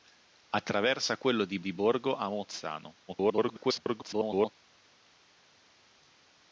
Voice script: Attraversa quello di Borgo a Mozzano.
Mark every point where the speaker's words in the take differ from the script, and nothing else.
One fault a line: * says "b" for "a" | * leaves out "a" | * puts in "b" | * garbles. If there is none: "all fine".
* puts in "di"
* garbles